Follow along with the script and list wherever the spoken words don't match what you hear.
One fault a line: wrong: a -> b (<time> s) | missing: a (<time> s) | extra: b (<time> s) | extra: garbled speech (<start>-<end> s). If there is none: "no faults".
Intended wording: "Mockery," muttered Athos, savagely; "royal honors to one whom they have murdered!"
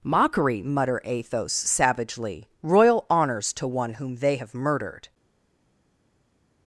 wrong: muttered -> mutter (0.6 s)